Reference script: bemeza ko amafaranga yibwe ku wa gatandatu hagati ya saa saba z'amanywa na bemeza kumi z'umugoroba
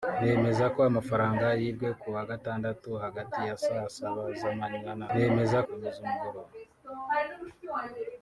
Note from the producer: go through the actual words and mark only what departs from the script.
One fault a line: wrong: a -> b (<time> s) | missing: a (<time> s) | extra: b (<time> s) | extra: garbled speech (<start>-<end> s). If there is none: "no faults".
no faults